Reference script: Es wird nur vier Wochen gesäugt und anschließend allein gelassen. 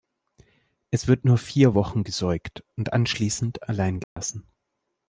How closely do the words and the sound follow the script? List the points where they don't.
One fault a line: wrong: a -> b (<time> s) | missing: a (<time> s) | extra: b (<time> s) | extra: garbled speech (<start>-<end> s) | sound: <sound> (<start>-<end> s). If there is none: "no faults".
sound: dropout (4.0-4.2 s)